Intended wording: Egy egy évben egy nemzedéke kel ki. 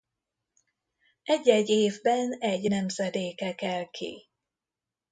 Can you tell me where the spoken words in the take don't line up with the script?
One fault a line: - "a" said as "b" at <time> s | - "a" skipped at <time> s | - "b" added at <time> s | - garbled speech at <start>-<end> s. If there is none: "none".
none